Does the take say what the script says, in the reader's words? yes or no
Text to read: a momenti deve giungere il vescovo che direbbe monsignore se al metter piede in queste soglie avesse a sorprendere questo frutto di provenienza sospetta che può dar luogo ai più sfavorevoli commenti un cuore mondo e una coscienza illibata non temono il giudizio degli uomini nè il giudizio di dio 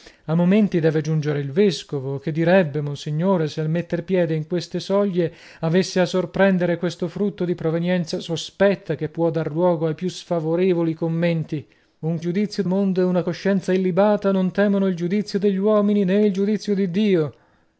no